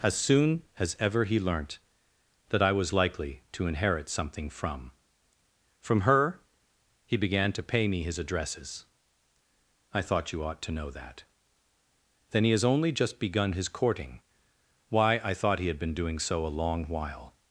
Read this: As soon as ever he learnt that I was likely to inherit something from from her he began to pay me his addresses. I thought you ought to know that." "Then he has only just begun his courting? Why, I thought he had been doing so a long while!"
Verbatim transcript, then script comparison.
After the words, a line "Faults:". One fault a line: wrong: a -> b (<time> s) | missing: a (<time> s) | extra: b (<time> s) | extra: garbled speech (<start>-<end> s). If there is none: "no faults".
As soon as ever he learnt that I was likely to inherit something from from her he began to pay me his addresses. I thought you ought to know that." "Then he has only just begun his courting? Why, I thought he had been doing so a long while!"
Faults:
no faults